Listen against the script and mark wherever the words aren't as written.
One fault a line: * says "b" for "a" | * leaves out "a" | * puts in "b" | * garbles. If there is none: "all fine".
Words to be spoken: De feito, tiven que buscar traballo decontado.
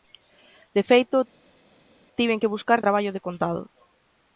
all fine